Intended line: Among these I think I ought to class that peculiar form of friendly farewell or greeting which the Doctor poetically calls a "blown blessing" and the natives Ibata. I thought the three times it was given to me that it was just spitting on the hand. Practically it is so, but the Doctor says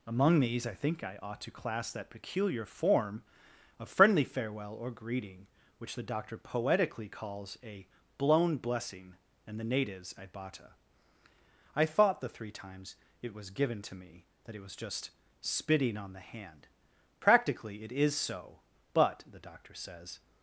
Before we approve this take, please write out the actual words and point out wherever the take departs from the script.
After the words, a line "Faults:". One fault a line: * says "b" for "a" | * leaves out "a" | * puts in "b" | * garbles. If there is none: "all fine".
Among these I think I ought to class that peculiar form of friendly farewell or greeting which the Doctor poetically calls a "blown blessing" and the natives Ibata. I thought the three times it was given to me that it was just spitting on the hand. Practically it is so, but the Doctor says
Faults:
all fine